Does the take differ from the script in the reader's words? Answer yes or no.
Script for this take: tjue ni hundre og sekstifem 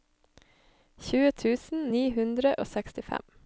yes